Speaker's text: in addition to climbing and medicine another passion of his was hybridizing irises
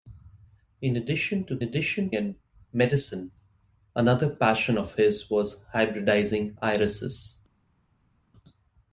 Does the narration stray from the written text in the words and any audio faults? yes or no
yes